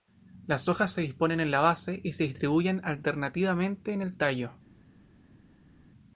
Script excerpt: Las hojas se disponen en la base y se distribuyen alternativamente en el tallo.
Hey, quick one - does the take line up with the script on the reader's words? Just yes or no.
yes